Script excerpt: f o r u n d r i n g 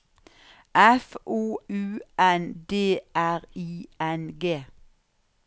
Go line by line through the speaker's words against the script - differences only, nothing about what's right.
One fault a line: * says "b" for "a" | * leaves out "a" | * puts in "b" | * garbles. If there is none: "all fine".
* leaves out "r"